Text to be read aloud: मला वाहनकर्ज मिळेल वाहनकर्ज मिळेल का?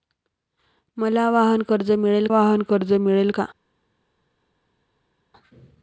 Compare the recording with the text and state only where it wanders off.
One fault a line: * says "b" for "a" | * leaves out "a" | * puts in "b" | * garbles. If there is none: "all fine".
all fine